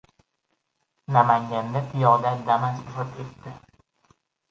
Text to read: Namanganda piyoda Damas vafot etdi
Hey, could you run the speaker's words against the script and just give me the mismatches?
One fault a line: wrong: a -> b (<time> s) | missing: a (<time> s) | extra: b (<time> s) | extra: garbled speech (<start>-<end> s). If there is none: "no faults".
no faults